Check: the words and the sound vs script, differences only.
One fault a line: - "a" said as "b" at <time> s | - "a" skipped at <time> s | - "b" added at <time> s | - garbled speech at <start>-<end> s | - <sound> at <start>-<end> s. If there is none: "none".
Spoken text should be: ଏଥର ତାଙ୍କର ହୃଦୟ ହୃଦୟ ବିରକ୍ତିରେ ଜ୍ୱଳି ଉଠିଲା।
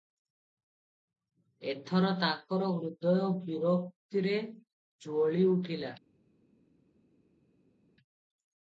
- "ହୃଦୟ" skipped at 3.3 s